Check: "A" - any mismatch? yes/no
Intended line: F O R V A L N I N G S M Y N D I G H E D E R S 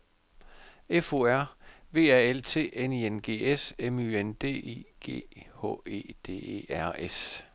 no